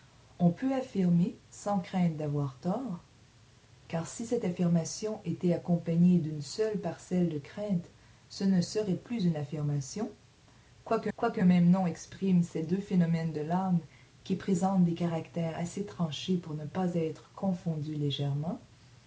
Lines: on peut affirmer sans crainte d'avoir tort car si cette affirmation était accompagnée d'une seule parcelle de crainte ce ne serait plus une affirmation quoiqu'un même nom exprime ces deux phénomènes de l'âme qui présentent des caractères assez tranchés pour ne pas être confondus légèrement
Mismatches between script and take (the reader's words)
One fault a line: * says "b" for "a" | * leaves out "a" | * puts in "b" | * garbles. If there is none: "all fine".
* puts in "quoiqu'un"